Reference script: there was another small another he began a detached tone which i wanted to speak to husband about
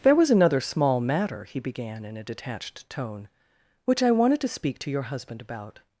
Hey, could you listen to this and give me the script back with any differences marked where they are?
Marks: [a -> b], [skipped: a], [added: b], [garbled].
there was another small [another -> matter] he began [added: in] a detached tone which i wanted to speak to [added: your] husband about